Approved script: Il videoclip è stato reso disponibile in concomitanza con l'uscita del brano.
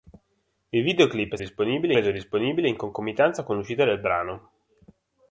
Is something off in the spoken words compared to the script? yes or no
yes